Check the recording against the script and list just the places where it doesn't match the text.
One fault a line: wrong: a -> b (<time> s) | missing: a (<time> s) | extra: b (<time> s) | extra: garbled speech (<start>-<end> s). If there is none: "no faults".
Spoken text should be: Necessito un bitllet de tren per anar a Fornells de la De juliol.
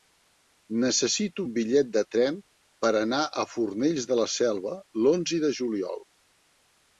extra: Selva l'onze (4.4 s)